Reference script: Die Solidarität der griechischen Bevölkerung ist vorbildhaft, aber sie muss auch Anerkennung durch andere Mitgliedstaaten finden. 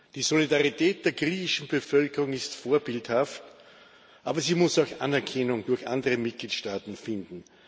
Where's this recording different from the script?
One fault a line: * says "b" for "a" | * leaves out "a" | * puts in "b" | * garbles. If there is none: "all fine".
all fine